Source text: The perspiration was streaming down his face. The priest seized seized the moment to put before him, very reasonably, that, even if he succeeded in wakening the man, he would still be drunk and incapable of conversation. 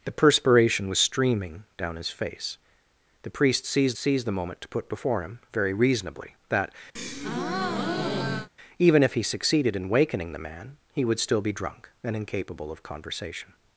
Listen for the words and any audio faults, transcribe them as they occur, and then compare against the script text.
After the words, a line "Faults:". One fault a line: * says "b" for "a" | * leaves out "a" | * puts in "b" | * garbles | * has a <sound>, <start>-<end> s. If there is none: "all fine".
The perspiration was streaming down his face. The priest seized seized the moment to put before him, very reasonably, that, even if he succeeded in wakening the man, he would still be drunk and incapable of conversation.
Faults:
* has a breath, 7.0-8.5 s